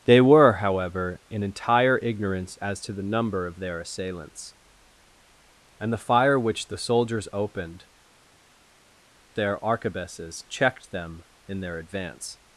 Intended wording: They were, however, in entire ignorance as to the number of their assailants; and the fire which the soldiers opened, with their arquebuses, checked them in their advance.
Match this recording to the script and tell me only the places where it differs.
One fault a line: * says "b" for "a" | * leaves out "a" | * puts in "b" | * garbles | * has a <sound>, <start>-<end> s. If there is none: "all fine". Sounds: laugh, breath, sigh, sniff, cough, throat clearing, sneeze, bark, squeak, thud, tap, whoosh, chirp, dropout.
* leaves out "with"